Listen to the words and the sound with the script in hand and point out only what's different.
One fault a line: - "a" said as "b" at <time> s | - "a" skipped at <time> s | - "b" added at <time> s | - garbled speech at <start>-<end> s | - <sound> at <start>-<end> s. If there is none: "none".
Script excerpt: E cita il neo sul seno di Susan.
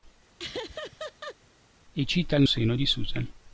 - laugh at 0.4-1.4 s
- "neo sul" skipped at 2.4 s